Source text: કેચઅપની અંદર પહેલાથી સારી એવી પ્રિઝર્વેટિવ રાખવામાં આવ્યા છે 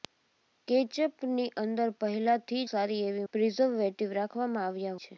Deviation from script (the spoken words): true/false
false